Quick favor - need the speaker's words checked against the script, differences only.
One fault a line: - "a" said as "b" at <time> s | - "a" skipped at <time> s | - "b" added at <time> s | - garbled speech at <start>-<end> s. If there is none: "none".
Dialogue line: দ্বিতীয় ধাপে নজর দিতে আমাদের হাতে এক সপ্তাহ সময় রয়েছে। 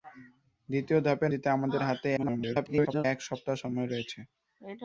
- "নজর" skipped at 1.3 s
- garbled speech at 2.2-3.1 s